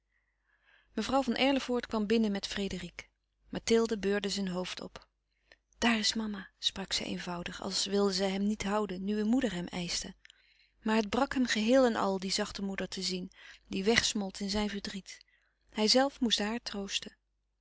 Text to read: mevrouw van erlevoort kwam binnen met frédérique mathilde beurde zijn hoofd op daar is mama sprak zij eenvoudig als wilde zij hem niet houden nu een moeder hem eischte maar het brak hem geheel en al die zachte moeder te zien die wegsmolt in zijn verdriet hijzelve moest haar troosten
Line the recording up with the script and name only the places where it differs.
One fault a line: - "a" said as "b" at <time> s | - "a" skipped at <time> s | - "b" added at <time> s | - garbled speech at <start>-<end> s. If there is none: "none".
none